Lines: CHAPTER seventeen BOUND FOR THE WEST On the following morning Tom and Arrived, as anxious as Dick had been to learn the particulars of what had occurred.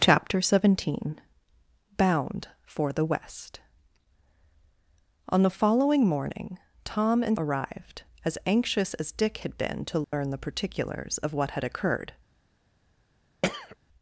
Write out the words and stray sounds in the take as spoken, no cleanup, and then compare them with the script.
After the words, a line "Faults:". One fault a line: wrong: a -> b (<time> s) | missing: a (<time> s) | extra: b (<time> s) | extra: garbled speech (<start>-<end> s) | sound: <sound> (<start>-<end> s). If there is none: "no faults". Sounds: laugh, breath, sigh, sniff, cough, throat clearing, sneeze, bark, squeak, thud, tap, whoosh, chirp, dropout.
CHAPTER seventeen BOUND FOR THE WEST On the following morning Tom and Arrived, as anxious as Dick had been to learn the particulars of what had occurred.
Faults:
sound: dropout (10.0-10.1 s)
sound: throat clearing (13.4-13.8 s)